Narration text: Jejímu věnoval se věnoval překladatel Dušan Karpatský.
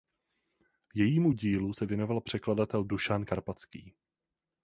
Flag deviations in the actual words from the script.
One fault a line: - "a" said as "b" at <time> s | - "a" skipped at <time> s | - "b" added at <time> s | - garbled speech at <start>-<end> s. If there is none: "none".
- "věnoval" said as "dílu" at 1.3 s